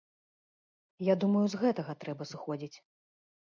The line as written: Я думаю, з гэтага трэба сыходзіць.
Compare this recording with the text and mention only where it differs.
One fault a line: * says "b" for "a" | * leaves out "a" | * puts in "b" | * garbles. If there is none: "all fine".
all fine